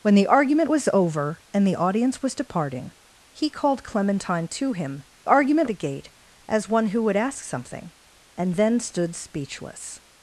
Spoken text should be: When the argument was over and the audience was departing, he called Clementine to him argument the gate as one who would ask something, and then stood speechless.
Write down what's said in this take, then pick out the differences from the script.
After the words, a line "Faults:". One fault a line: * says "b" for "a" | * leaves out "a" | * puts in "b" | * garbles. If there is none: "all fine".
When the argument was over and the audience was departing, he called Clementine to him argument the gate as one who would ask something, and then stood speechless.
Faults:
all fine